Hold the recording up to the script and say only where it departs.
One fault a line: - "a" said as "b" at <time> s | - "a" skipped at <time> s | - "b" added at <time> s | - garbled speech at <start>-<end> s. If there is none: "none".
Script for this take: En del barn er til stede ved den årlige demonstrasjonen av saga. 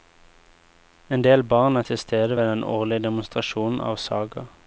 none